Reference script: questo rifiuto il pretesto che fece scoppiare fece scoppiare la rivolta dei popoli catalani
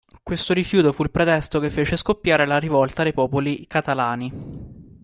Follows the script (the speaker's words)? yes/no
no